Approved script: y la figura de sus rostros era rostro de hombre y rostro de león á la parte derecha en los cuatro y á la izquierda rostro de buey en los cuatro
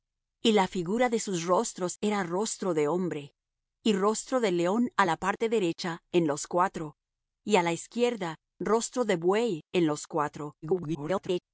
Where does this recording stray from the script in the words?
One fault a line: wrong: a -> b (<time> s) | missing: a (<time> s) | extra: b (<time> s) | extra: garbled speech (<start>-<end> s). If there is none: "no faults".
extra: garbled speech (10.6-11.4 s)